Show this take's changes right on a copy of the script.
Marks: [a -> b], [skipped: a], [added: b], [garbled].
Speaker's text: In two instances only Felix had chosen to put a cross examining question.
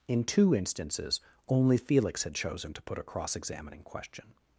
In two instances only Felix had chosen to put a cross examining question.